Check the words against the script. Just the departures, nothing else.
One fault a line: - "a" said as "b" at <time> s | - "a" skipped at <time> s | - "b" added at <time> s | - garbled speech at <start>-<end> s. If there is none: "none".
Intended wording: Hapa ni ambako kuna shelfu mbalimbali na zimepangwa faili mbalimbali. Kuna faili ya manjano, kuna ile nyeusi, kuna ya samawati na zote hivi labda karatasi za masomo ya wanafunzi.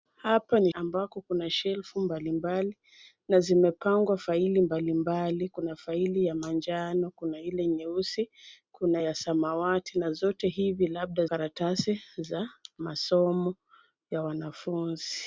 none